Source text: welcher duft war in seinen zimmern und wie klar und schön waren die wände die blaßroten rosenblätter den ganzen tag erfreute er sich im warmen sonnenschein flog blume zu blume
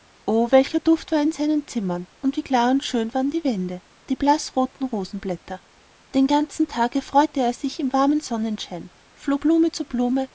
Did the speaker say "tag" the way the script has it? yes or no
yes